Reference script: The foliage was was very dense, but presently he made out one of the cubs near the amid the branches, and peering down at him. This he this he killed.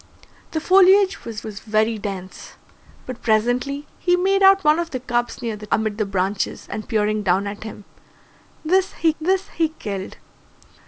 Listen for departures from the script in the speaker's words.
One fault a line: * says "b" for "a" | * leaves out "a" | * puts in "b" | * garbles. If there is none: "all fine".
all fine